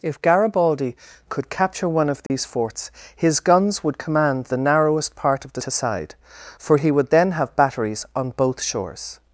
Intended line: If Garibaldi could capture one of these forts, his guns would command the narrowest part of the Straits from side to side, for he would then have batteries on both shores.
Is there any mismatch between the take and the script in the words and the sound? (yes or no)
yes